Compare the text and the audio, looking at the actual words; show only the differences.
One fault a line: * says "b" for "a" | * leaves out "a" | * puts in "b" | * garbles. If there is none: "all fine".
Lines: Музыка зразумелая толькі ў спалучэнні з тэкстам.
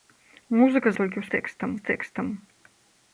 * leaves out "зразумелая"
* says "тэкстам" for "спалучэнні"